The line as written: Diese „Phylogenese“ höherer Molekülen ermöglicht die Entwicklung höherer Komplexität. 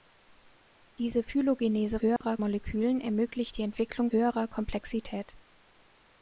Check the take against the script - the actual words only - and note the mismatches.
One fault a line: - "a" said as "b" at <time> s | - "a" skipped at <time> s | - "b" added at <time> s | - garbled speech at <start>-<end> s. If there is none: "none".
none